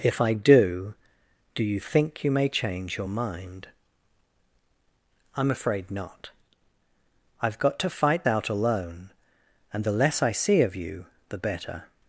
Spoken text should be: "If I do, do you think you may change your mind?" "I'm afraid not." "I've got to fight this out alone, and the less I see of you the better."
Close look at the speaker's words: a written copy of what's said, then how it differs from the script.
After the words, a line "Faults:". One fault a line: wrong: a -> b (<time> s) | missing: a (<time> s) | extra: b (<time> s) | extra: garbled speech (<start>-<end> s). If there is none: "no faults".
"If I do, do you think you may change your mind?" "I'm afraid not." "I've got to fight out alone, and the less I see of you the better."
Faults:
missing: this (8.2 s)